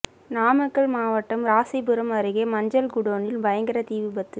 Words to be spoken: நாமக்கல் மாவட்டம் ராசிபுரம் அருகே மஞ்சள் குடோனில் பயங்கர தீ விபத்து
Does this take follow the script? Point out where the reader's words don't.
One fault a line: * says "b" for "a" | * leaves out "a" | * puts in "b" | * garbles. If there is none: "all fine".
all fine